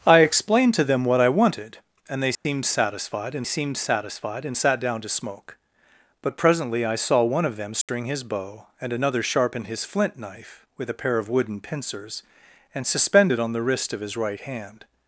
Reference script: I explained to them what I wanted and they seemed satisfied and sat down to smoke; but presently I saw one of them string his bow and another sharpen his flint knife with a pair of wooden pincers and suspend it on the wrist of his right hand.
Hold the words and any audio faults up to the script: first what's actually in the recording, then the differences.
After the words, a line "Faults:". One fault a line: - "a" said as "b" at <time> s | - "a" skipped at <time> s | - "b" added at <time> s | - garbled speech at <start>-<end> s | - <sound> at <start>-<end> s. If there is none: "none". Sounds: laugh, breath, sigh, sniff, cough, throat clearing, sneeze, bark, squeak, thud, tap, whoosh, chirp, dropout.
I explained to them what I wanted and they seemed satisfied and seemed satisfied and sat down to smoke; but presently I saw one of them string his bow and another sharpen his flint knife with a pair of wooden pincers and suspend it on the wrist of his right hand.
Faults:
- dropout at 2.3-2.5 s
- "seemed satisfied and" added at 3.4 s
- dropout at 7.8-7.9 s